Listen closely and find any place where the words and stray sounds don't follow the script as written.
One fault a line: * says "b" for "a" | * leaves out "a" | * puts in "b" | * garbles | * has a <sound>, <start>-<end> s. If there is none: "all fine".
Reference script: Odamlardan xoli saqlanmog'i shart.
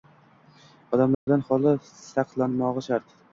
* has a dropout, 1.1-1.3 s